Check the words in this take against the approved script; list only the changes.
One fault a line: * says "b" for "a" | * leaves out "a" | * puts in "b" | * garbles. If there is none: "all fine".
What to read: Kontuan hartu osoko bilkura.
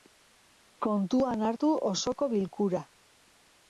all fine